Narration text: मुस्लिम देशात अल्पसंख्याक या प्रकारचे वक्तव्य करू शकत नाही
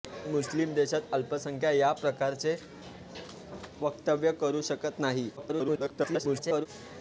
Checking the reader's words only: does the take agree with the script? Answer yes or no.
no